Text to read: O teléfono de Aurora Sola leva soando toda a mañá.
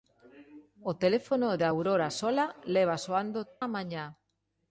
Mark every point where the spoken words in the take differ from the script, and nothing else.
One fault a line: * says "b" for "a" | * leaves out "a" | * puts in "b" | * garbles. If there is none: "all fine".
* leaves out "toda"